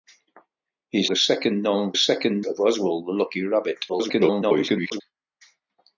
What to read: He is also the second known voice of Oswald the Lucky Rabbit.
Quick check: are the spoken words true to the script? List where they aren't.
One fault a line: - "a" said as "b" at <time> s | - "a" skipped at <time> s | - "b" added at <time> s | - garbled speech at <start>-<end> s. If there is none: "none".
- "also" skipped at 1.1 s
- "voice" said as "second" at 2.0 s
- garbled speech at 3.9-5.0 s